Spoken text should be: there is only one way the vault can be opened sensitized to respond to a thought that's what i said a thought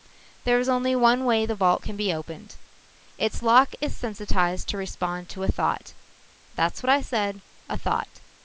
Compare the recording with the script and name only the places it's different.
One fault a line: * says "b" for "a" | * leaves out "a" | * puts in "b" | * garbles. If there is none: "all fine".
* puts in "its lock is"